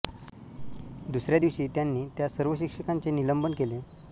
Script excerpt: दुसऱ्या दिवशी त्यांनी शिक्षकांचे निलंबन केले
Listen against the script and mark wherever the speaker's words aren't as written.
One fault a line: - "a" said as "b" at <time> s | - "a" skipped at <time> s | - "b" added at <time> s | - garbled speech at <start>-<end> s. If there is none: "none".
- "त्या सर्व" added at 2.2 s